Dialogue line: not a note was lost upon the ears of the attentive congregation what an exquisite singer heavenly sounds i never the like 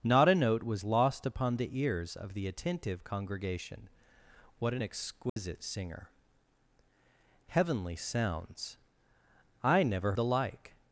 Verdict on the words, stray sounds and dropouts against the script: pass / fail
fail